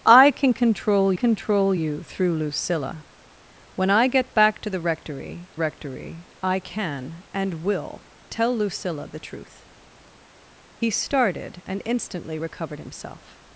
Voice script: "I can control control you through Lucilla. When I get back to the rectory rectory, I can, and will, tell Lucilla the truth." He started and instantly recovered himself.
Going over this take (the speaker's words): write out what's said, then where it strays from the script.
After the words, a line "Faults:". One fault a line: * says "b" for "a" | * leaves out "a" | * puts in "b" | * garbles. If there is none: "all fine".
"I can control control you through Lucilla. When I get back to the rectory rectory, I can, and will, tell Lucilla the truth." He started and instantly recovered himself.
Faults:
all fine